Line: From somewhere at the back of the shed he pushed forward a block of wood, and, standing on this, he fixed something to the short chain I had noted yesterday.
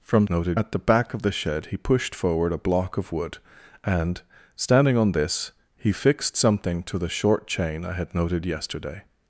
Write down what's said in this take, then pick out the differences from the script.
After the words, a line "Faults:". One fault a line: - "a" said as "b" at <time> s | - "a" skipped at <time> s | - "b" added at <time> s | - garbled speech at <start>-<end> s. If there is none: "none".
From noted at the back of the shed he pushed forward a block of wood, and, standing on this, he fixed something to the short chain I had noted yesterday.
Faults:
- "somewhere" said as "noted" at 0.3 s